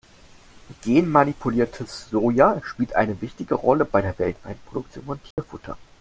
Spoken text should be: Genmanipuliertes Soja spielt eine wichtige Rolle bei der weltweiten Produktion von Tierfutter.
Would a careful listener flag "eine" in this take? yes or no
no